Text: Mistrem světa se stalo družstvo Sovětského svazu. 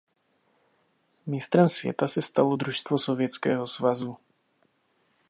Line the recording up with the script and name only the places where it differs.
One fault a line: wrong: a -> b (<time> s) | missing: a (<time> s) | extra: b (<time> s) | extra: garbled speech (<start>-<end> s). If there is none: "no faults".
no faults